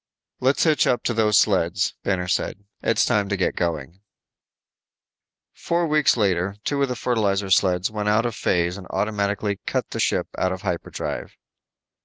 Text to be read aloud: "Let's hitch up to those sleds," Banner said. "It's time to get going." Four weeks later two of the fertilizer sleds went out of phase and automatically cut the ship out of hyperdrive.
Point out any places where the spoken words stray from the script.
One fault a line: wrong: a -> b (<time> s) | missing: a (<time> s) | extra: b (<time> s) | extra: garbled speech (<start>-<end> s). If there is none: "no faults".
no faults